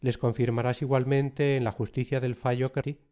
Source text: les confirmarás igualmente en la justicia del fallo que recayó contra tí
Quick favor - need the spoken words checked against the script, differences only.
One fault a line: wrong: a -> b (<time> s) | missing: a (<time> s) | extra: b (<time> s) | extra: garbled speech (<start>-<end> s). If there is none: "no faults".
missing: recayó contra (2.8 s)